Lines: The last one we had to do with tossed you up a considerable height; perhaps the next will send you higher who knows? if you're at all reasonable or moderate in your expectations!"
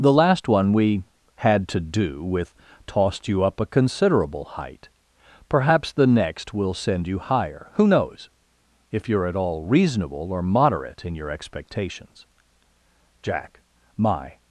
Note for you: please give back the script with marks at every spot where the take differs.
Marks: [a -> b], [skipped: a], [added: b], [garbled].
The last one we had to do with tossed you up a considerable height; perhaps the next will send you higher who knows? if you're at all reasonable or moderate in your expectations!" [added: Jack my]